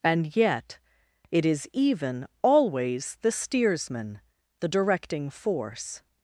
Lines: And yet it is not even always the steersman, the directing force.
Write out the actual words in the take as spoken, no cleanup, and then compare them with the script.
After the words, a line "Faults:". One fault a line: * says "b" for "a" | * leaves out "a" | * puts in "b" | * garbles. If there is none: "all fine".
And yet it is even always the steersman, the directing force.
Faults:
* leaves out "not"